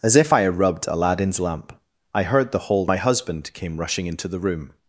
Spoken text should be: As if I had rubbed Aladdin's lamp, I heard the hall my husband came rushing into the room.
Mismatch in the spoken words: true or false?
false